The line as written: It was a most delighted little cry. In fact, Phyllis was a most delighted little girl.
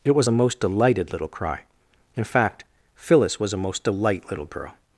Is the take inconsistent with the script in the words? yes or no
yes